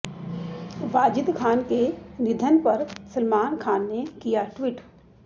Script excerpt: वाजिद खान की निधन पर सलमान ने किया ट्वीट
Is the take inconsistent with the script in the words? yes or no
yes